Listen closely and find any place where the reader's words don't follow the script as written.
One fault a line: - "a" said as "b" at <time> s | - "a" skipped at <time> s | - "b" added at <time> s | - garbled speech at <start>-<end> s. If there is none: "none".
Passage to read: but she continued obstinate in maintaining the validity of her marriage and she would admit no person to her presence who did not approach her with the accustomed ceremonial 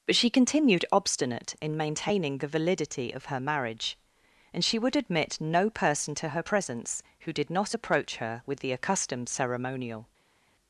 none